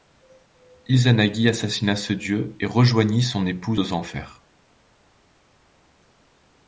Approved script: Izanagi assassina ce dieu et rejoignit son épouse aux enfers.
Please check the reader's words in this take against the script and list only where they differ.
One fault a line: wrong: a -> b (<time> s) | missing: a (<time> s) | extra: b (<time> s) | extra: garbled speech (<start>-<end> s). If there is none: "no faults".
no faults